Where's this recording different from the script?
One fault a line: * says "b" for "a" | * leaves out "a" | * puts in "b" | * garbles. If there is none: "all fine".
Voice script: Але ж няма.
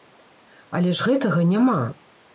* puts in "гэтага"